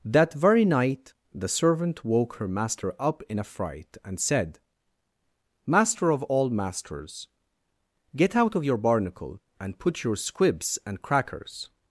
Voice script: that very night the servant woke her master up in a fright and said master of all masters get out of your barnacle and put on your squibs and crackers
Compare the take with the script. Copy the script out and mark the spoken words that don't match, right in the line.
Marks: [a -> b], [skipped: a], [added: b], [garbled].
that very night the servant woke her master up in a fright and said master of all masters get out of your barnacle and put [skipped: on] your squibs and crackers